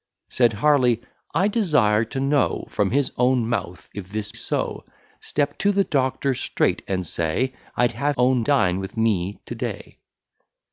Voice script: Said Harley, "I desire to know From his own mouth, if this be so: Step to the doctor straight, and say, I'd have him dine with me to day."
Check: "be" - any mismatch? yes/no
yes